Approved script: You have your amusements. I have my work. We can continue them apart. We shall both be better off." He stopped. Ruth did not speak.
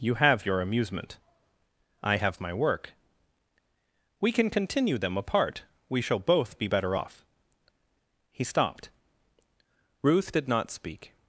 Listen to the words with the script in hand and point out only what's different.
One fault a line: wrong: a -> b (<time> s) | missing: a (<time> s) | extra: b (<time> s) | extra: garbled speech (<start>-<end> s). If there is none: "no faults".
wrong: amusements -> amusement (0.6 s)